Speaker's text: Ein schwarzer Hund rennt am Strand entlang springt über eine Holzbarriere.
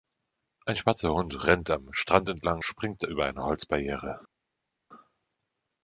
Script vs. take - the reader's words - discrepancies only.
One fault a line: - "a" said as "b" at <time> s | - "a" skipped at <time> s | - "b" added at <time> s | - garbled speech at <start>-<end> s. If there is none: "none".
none